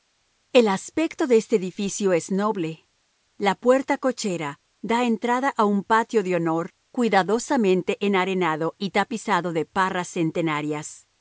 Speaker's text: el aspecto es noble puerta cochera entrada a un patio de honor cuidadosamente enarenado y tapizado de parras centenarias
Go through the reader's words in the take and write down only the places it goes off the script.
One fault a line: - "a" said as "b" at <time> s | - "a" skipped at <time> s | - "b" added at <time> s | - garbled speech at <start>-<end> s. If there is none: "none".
- "de este edificio" added at 1.3 s
- "la" added at 3.4 s
- "da" added at 4.8 s